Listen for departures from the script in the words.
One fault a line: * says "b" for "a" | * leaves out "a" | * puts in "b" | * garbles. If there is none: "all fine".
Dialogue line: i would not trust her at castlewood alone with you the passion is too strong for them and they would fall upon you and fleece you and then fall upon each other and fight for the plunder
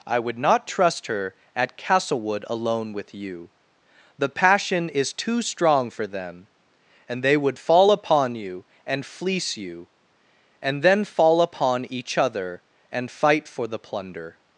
all fine